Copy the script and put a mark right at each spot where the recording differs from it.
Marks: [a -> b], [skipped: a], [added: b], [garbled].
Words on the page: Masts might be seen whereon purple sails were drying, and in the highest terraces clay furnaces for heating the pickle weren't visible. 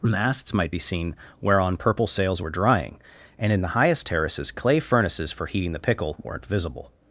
Masts might be seen whereon purple sails were drying, and in the highest terraces clay furnaces for heating the pickle weren't visible.